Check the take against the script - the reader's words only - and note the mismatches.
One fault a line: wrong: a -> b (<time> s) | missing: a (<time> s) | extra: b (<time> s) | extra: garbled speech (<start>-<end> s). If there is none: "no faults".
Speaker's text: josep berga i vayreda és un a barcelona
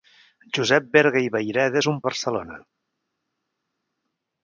no faults